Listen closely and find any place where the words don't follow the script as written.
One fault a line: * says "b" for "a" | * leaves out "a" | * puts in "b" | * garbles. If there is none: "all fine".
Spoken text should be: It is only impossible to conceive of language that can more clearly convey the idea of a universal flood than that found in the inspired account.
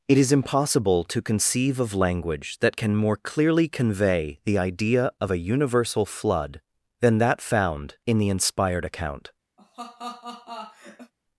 * leaves out "only"